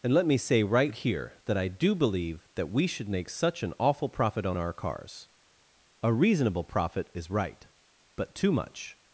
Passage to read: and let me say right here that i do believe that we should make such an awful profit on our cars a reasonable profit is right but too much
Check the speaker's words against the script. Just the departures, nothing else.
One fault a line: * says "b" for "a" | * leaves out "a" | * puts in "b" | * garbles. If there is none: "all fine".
all fine